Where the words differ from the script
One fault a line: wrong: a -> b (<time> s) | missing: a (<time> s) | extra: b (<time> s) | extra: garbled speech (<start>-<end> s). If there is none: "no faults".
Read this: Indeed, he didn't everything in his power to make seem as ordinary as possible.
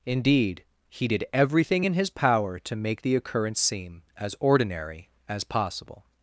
wrong: didn't -> did (1.1 s)
extra: the occurrence (3.0 s)